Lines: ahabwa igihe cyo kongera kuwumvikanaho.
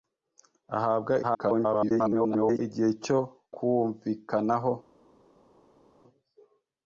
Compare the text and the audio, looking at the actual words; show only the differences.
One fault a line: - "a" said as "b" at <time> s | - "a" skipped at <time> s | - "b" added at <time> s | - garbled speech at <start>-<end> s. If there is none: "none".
- garbled speech at 1.2-2.6 s
- "kongera" skipped at 3.2 s